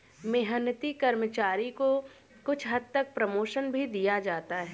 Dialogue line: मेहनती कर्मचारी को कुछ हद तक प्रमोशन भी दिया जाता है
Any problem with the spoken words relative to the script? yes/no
no